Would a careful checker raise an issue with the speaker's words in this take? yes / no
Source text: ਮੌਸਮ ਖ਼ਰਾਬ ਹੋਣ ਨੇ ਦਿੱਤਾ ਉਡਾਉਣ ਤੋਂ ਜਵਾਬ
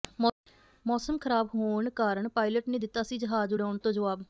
yes